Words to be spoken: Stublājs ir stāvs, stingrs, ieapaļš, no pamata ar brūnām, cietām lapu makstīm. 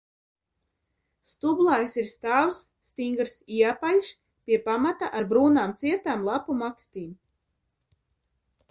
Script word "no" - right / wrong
wrong